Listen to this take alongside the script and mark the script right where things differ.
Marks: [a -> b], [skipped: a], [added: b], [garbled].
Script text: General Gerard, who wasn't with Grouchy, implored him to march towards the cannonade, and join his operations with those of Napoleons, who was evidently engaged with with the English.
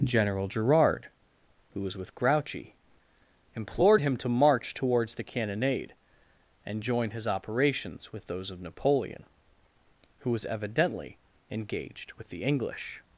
General Gerard, who [wasn't -> was] with Grouchy, implored him to march towards the cannonade, and join his operations with those of [Napoleons, -> Napoleon] who was evidently engaged with [skipped: with] the English.